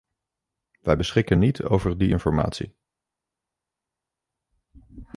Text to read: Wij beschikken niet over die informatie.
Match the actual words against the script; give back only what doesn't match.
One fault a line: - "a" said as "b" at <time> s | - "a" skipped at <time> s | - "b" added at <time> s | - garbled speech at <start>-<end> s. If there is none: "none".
none